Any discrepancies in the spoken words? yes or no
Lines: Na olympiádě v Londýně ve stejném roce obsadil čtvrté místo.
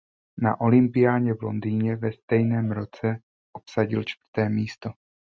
no